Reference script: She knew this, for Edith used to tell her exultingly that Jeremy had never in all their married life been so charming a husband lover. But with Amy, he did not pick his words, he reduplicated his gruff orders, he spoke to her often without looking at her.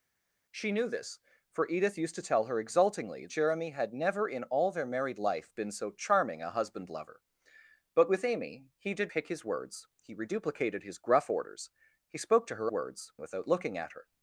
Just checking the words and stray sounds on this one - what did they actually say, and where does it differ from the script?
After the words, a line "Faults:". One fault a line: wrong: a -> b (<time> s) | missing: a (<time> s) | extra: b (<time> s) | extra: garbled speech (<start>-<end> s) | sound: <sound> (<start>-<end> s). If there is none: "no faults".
She knew this, for Edith used to tell her exultingly Jeremy had never in all their married life been so charming a husband lover. But with Amy, he did pick his words, he reduplicated his gruff orders, he spoke to her words without looking at her.
Faults:
missing: that (3.3 s)
missing: not (9.1 s)
wrong: often -> words (12.7 s)